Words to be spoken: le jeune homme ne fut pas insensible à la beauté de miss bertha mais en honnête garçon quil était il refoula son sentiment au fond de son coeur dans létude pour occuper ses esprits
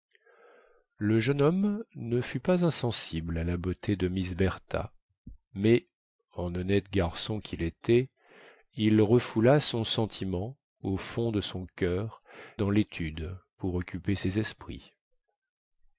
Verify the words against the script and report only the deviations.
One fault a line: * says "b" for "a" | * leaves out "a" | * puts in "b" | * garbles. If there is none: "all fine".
all fine